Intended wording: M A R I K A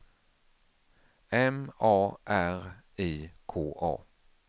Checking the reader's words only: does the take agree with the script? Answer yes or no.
yes